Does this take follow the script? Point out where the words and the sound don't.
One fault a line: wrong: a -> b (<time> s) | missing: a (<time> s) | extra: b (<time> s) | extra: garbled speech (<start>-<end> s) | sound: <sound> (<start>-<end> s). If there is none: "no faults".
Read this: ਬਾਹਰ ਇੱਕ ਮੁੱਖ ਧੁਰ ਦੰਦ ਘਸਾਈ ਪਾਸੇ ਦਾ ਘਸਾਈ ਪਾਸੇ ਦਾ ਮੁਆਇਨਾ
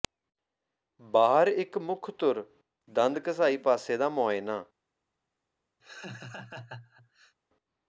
missing: ਘਸਾਈ ਪਾਸੇ ਦਾ (4.1 s)
sound: laugh (5.8-7.4 s)